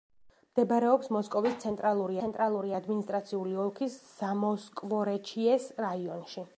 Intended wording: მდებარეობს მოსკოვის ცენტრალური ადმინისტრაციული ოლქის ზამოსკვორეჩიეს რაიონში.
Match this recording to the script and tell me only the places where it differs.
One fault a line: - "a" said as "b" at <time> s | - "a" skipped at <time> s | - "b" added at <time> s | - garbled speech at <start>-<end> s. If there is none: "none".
- "ცენტრალური" added at 2.2 s